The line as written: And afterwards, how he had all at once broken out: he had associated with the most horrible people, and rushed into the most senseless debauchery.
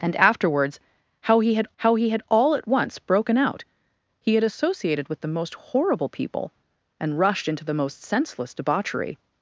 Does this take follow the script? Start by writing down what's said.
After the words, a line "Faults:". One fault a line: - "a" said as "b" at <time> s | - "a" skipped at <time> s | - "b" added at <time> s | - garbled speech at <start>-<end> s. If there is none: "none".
And afterwards, how he had how he had all at once broken out: he had associated with the most horrible people, and rushed into the most senseless debauchery.
Faults:
- "how he had" added at 1.8 s